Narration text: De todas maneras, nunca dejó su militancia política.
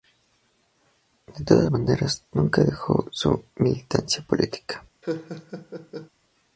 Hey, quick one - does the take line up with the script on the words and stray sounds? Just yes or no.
no